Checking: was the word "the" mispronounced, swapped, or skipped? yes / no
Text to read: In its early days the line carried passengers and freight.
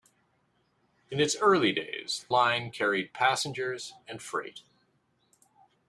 yes